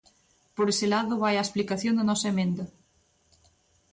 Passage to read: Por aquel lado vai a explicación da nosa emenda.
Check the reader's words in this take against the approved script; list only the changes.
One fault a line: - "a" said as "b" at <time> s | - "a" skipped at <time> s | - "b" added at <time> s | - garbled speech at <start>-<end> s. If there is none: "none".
- "aquel" said as "ese" at 0.7 s